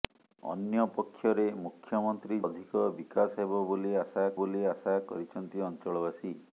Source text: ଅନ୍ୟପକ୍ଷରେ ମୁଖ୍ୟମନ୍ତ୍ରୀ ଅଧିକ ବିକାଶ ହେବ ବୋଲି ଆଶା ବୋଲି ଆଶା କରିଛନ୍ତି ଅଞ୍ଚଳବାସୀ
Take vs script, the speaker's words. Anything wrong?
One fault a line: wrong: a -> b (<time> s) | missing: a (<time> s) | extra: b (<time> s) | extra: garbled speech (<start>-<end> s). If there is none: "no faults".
no faults